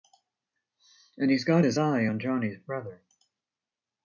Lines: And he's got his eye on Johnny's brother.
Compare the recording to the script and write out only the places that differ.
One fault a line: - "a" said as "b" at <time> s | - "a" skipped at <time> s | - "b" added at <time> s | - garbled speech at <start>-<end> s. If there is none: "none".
none